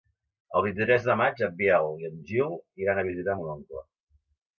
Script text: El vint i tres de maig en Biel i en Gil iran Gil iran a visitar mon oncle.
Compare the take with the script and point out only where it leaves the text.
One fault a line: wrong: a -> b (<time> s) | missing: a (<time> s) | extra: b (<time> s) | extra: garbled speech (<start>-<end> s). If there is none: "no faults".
missing: Gil iran (3.0 s)